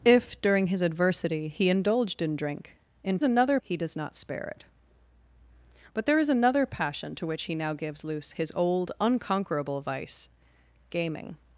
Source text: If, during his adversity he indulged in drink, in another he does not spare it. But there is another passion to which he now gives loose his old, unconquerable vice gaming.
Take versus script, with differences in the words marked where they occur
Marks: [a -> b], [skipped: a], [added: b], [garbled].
If, during his adversity he indulged in drink, in another he does not spare it. But there is another passion to which he now gives loose his old, unconquerable vice gaming.